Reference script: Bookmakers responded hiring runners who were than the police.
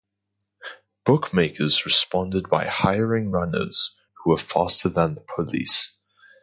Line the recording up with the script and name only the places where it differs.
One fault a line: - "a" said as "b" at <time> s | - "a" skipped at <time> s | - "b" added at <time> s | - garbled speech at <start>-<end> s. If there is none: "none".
- "by" added at 2.5 s
- "faster" added at 4.4 s